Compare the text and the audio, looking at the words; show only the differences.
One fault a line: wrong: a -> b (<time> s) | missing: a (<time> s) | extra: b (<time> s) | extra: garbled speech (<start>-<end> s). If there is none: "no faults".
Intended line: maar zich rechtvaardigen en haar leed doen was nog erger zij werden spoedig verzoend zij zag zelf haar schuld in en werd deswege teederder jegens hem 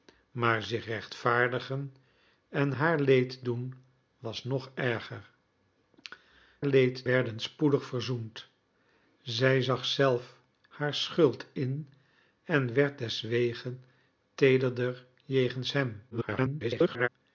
wrong: zij -> leed (6.6 s)
extra: garbled speech (16.1-17.1 s)